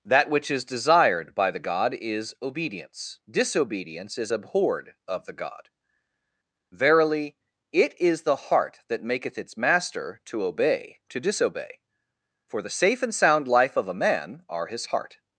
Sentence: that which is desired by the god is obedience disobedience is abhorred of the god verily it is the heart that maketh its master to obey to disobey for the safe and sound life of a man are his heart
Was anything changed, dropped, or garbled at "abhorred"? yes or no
no